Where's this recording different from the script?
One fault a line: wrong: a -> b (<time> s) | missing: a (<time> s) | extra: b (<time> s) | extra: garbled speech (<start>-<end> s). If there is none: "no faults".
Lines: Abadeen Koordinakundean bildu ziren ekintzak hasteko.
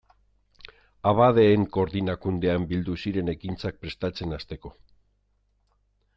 extra: prestatzen (3.9 s)